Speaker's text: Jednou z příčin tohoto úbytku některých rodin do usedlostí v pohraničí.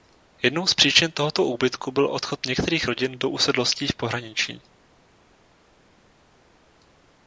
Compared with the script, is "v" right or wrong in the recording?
right